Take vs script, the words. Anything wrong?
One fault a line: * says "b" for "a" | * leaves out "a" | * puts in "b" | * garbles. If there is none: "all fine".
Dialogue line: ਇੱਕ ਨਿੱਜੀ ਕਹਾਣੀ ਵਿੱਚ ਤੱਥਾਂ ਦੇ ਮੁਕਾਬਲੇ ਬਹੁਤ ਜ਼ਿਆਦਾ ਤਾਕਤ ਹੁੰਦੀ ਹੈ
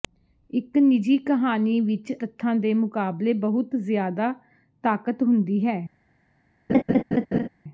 all fine